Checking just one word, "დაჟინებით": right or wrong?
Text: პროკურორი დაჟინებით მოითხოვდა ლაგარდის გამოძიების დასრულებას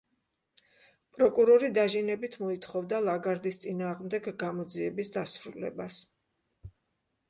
right